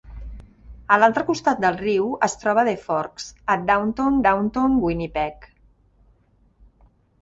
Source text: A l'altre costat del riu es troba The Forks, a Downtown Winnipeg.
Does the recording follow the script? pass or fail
fail